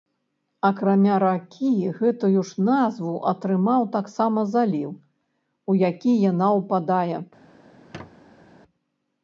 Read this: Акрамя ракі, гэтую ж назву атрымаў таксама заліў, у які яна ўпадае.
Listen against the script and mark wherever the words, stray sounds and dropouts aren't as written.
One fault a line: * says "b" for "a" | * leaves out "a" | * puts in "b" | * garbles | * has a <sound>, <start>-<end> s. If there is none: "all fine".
* has a squeak, 7.7-8.5 s